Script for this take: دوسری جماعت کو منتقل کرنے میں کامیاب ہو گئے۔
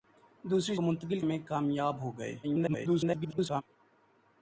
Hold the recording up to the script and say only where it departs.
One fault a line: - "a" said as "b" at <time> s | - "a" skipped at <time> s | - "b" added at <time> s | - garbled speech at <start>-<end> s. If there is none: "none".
- "جماعت" skipped at 0.8 s
- "کرنے" skipped at 1.2 s
- garbled speech at 2.4-3.6 s